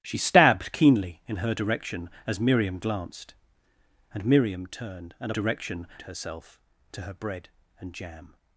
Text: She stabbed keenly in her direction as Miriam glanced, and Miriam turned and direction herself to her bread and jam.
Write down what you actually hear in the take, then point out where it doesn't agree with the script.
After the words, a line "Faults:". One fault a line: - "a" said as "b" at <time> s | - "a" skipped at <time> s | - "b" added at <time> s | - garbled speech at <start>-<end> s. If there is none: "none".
She stabbed keenly in her direction as Miriam glanced, and Miriam turned and direction herself to her bread and jam.
Faults:
none